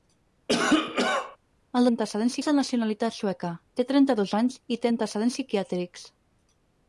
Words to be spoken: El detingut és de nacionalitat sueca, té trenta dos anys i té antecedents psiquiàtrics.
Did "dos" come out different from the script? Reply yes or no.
no